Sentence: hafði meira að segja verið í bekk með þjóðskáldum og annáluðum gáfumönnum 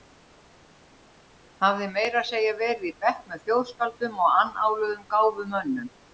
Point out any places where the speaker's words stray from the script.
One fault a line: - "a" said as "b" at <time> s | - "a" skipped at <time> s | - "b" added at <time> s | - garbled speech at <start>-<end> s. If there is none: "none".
none